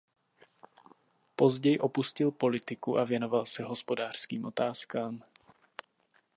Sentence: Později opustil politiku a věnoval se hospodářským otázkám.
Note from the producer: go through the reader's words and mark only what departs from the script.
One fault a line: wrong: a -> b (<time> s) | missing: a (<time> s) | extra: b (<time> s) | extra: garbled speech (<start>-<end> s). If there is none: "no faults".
no faults